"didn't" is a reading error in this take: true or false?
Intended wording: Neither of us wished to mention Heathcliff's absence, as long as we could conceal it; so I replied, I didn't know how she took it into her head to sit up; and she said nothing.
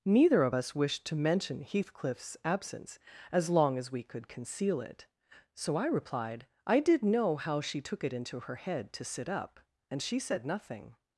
true